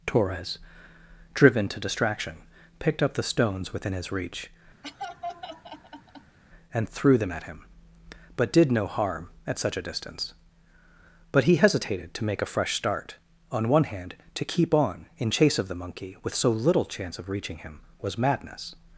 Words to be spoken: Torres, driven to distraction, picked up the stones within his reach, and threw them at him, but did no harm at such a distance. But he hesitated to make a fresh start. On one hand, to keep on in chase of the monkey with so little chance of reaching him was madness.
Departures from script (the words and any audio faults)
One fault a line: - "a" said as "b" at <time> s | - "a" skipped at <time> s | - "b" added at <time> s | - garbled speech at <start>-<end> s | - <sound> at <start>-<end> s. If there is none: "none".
- laugh at 4.8-6.4 s